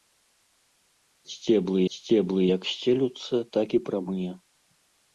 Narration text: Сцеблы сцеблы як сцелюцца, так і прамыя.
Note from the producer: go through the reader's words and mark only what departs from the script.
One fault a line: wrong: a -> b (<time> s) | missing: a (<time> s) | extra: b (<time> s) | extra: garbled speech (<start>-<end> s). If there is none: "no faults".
no faults